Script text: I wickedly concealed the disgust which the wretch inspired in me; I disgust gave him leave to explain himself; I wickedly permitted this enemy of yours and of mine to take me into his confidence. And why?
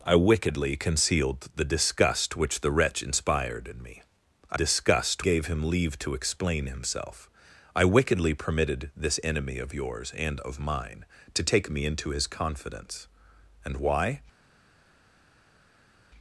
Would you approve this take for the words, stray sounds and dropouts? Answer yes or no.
yes